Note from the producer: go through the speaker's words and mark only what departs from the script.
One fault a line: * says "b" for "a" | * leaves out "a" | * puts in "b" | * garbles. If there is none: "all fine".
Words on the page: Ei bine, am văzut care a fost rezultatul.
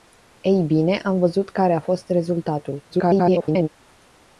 * garbles